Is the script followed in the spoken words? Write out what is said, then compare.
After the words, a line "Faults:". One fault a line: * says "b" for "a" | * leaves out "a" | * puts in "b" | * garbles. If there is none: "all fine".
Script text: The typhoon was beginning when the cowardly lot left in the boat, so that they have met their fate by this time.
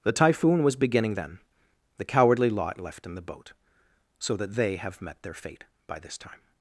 The typhoon was beginning then the cowardly lot left in the boat, so that they have met their fate by this time.
Faults:
* says "then" for "when"